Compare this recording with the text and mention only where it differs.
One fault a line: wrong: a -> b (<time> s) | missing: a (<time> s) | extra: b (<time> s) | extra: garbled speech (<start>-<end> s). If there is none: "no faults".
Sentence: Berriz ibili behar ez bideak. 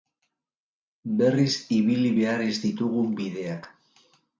extra: ditugun (2.7 s)